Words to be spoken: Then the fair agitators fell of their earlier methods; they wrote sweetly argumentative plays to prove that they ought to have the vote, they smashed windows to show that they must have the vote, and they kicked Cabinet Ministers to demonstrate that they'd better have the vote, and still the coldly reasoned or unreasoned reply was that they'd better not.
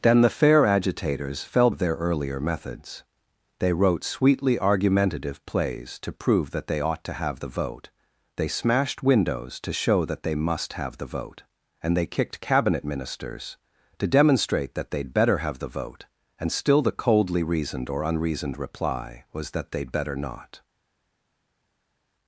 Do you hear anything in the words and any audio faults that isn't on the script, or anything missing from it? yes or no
no